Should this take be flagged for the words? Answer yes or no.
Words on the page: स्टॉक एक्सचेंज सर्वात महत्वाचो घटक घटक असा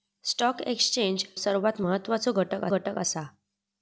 no